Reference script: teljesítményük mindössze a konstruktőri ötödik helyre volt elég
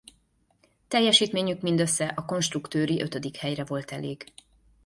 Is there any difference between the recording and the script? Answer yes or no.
no